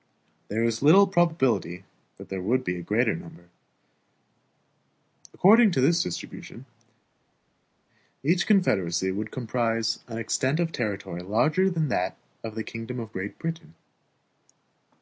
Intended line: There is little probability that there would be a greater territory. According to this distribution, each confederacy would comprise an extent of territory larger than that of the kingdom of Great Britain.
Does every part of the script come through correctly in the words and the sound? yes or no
no